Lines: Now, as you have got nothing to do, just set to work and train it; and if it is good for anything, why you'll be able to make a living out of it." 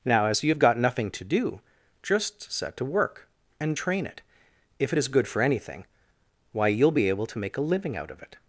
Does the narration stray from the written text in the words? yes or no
yes